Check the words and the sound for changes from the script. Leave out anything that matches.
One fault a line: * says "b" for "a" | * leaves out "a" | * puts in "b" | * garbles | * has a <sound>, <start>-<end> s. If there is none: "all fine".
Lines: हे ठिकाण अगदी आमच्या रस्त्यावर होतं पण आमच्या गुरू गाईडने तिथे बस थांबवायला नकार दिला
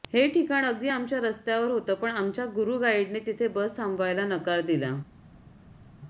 all fine